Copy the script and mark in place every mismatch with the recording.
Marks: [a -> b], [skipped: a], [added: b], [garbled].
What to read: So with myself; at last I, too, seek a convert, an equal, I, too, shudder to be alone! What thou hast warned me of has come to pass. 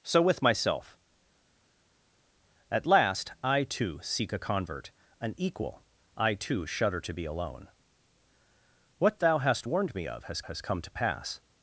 So with myself; at last I, too, seek a convert, an equal, I, too, shudder to be alone! What thou hast warned me of has [added: has] come to pass.